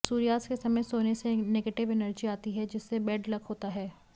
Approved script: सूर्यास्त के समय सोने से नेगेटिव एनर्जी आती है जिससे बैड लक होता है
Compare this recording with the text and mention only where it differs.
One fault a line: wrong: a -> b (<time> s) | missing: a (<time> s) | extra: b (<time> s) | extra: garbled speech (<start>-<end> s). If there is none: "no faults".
no faults